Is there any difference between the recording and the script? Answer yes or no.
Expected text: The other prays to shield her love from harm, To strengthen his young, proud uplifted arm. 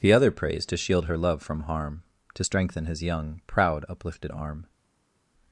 no